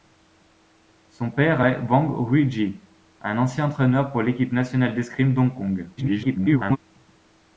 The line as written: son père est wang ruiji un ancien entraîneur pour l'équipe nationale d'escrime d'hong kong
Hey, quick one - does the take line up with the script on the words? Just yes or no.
no